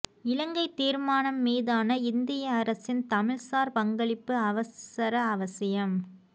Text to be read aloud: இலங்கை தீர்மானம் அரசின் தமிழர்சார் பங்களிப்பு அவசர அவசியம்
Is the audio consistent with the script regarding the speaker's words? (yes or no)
no